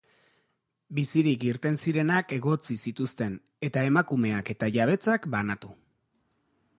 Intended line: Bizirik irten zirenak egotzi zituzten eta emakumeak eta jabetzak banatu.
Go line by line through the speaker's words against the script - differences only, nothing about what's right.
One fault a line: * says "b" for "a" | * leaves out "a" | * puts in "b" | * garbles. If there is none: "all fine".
all fine